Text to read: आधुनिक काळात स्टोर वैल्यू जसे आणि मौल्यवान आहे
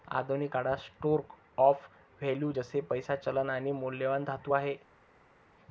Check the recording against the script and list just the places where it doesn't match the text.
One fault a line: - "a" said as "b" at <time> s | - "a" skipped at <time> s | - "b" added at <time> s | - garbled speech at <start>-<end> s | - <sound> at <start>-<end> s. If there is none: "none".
- "ऑफ" added at 1.6 s
- "पैसा चलन" added at 2.8 s
- "धातू" added at 4.2 s